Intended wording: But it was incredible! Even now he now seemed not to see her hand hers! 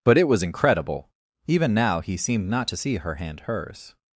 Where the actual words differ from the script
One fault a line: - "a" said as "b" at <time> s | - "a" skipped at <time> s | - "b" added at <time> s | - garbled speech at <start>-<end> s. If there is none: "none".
- "now" skipped at 2.2 s